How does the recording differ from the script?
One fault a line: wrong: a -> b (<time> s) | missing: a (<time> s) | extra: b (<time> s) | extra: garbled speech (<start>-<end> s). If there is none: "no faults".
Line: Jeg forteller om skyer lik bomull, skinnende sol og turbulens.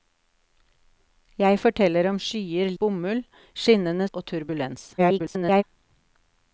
missing: lik (2.7 s)
missing: sol (4.1 s)
extra: garbled speech (5.0-5.6 s)